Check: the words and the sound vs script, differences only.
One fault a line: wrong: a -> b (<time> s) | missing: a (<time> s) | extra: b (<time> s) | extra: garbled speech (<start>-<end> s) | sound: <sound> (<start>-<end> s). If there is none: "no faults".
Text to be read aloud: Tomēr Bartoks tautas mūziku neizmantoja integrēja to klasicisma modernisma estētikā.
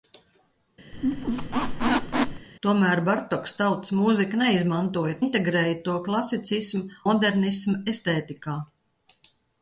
sound: squeak (0.9-2.5 s)